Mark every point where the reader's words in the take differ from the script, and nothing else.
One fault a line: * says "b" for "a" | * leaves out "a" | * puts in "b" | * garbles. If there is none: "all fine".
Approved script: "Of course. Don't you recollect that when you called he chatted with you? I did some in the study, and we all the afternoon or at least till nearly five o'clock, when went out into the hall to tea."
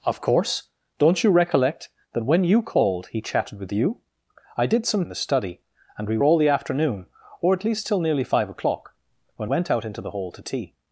all fine